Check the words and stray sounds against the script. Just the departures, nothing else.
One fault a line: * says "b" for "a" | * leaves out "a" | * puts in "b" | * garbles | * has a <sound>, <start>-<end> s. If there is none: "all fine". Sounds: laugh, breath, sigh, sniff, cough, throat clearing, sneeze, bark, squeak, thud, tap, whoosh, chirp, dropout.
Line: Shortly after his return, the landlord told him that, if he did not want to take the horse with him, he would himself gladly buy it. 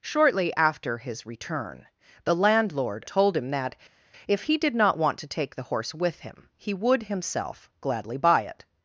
all fine